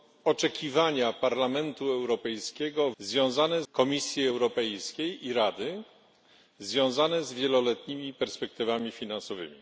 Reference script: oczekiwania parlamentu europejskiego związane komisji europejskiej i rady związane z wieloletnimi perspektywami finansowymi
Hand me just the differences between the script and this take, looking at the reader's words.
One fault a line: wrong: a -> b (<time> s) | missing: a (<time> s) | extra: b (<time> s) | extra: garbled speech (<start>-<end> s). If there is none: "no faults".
no faults